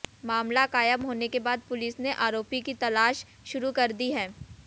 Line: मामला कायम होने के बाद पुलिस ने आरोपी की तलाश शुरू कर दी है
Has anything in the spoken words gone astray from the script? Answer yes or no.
no